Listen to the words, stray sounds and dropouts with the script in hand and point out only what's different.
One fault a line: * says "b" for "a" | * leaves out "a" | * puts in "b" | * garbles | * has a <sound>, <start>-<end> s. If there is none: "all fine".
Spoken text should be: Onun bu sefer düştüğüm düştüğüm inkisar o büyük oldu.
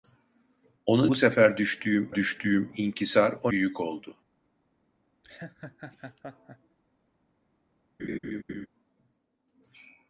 * has a laugh, 5.2-6.8 s
* has a laugh, 8.0-8.7 s